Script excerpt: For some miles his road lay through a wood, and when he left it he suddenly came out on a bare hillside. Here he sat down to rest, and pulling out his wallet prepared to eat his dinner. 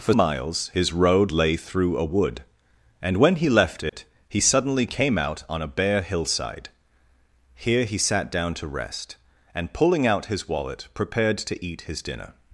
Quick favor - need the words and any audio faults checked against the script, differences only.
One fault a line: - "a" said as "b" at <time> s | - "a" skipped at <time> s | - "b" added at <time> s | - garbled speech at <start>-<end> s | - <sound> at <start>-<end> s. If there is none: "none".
- "some" skipped at 0.1 s
- dropout at 3.9-3.9 s